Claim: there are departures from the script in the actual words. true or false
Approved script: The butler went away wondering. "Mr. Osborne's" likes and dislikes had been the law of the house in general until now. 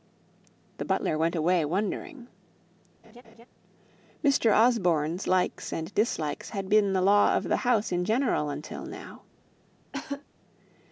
false